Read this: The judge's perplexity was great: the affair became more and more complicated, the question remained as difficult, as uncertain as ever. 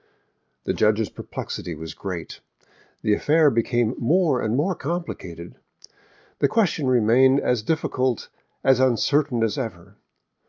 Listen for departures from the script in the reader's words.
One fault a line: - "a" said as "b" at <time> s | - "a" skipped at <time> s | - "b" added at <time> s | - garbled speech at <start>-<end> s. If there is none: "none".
none